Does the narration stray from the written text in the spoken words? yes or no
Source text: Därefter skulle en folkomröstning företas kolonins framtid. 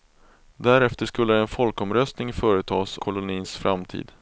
no